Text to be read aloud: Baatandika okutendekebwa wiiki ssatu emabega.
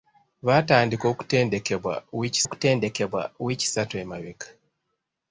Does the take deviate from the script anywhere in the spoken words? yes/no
yes